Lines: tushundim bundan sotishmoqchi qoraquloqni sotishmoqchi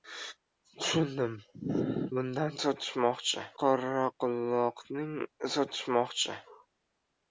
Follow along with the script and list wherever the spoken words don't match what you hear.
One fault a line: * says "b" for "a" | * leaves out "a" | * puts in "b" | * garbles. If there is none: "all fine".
all fine